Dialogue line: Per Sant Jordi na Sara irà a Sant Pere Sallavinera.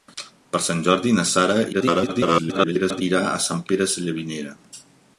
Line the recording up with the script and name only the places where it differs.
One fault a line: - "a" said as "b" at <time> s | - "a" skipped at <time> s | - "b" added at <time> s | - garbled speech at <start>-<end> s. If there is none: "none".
- garbled speech at 1.7-3.0 s